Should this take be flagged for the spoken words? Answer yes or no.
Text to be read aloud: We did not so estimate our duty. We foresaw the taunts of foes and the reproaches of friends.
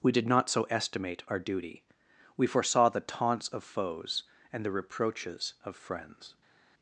no